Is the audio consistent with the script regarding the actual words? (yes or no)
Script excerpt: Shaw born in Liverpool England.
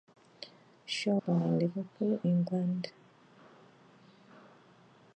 yes